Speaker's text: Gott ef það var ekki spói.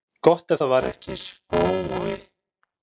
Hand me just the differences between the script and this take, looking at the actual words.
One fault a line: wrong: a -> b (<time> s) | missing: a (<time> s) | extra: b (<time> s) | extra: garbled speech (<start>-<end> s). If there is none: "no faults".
no faults